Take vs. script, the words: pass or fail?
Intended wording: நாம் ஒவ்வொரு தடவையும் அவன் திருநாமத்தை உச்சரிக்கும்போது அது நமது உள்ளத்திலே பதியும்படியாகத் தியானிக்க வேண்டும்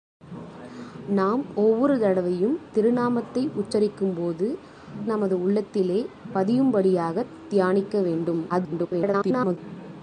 fail